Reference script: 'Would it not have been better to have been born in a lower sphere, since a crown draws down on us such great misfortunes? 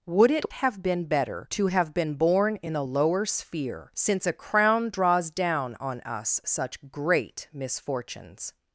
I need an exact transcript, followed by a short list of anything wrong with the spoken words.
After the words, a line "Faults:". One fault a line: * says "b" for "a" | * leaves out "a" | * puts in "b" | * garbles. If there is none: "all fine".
'Would it have been better to have been born in a lower sphere, since a crown draws down on us such great misfortunes?
Faults:
* leaves out "not"